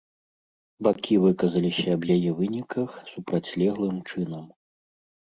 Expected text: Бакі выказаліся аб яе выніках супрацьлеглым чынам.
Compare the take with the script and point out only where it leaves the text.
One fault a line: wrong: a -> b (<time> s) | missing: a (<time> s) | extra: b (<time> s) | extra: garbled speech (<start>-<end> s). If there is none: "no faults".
no faults